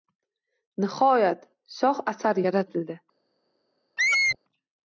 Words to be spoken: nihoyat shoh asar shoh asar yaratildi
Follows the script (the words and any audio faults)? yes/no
no